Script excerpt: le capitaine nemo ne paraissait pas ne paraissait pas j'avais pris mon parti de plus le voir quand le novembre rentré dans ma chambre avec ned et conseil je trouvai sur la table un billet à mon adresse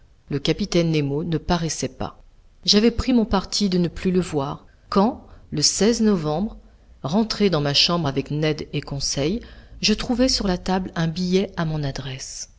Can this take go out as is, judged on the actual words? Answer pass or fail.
fail